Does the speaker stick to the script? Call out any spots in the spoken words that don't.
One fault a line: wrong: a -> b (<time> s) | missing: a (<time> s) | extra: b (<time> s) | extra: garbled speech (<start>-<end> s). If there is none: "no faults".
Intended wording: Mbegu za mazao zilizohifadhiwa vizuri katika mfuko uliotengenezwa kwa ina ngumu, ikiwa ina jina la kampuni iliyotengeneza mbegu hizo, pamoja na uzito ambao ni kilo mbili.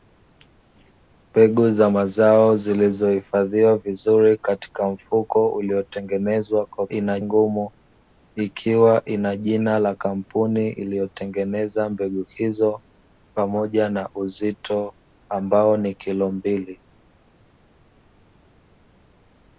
no faults